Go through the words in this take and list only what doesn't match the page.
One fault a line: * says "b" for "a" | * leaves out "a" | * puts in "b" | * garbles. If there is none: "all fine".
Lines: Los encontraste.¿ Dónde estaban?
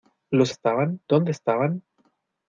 * says "estaban" for "encontraste"